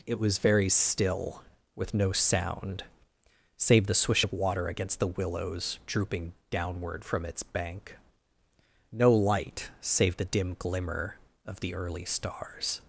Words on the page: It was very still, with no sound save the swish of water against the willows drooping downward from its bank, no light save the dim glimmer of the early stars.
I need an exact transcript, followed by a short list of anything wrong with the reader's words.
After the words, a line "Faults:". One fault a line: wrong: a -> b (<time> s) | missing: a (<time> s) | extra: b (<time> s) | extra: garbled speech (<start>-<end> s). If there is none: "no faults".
It was very still, with no sound save the swish of water against the willows drooping downward from its bank, no light save the dim glimmer of the early stars.
Faults:
no faults